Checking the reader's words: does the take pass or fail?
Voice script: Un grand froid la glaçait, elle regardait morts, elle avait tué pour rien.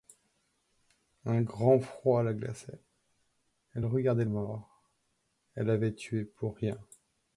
pass